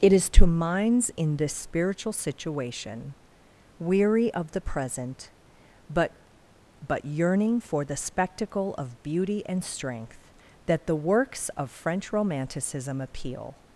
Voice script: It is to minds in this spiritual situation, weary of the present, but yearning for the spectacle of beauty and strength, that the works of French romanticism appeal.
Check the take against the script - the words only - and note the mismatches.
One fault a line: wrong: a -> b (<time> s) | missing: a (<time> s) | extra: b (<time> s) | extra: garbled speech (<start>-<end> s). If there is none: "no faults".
extra: but (6.9 s)